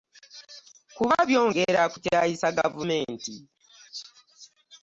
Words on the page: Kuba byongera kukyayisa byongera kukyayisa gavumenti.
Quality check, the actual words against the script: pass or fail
fail